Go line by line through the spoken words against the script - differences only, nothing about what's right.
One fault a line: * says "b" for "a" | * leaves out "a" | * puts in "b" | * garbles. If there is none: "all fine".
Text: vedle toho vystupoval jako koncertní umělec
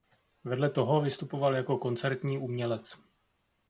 all fine